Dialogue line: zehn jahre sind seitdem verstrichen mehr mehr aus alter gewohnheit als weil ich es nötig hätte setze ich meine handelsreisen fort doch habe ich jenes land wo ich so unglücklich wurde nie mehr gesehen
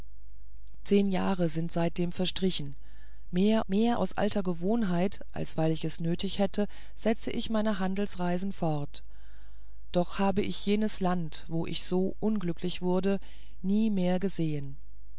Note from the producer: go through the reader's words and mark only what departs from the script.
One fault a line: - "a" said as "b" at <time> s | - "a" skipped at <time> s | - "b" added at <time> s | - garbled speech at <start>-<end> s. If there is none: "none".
none